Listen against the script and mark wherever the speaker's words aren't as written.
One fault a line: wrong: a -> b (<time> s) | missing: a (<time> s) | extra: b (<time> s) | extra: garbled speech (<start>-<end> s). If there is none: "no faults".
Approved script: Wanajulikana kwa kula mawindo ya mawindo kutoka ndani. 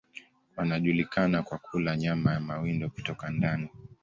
wrong: mawindo -> nyama (1.9 s)